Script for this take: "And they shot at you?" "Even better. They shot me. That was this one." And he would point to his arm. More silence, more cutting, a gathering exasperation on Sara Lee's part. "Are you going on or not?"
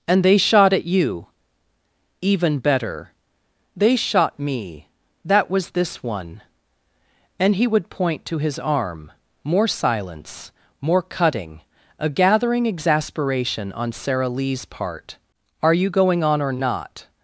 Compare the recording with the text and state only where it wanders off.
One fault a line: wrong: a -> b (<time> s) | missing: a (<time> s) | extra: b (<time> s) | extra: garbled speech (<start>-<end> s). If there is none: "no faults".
no faults